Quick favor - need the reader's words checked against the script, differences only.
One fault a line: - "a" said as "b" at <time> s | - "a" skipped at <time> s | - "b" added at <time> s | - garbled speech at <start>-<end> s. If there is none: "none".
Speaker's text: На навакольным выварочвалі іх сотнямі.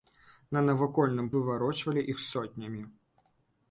none